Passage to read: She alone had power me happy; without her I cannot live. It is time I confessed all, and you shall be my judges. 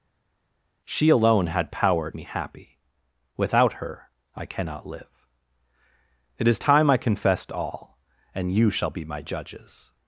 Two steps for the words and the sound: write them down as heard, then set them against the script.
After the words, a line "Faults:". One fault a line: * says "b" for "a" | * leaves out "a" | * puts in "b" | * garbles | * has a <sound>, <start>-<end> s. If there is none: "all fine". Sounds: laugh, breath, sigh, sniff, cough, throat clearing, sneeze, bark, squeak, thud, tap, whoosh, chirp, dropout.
She alone had power me happy; without her I cannot live. It is time I confessed all, and you shall be my judges.
Faults:
all fine